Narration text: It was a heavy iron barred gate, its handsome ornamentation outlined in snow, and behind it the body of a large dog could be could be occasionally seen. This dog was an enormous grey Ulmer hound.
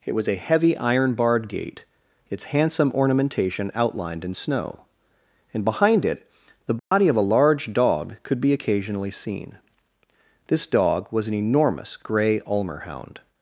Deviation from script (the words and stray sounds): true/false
true